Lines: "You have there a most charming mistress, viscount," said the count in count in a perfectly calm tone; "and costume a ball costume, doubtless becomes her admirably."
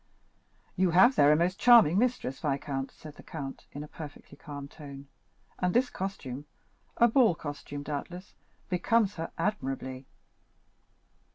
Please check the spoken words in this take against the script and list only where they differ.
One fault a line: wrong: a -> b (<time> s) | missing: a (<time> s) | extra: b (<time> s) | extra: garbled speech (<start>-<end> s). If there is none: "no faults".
missing: count in (3.8 s)
extra: this (5.8 s)